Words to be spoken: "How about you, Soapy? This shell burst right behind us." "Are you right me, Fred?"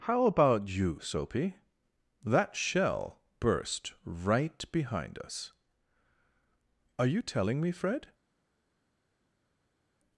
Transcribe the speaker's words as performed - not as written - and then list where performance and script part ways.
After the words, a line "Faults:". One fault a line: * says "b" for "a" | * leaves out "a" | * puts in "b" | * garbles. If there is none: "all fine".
"How about you, Soapy? That shell burst right behind us." "Are you telling me, Fred?"
Faults:
* says "That" for "This"
* says "telling" for "right"